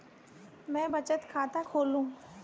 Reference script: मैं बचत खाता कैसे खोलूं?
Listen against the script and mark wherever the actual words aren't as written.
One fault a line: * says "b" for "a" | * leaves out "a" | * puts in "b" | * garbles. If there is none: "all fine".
* leaves out "कैसे"